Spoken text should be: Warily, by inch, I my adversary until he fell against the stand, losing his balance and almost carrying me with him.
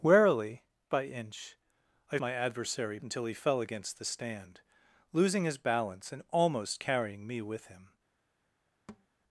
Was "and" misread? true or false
false